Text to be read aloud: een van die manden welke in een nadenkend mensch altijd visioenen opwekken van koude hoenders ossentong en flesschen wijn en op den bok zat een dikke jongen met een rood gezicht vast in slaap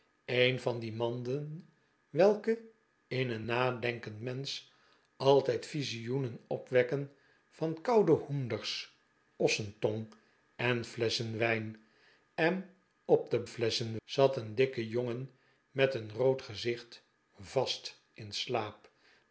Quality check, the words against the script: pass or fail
fail